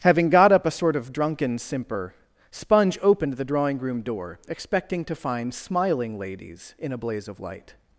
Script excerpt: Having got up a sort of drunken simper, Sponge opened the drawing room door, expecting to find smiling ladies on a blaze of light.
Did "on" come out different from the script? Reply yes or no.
yes